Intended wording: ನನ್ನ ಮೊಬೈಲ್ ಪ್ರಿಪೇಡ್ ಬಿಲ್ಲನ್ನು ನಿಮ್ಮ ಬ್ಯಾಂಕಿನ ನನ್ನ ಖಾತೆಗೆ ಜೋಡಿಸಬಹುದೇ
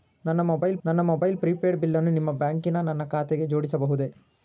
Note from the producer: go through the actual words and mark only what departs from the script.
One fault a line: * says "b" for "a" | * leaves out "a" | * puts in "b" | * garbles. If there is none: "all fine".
* puts in "ನನ್ನ ಮೊಬೈಲ್"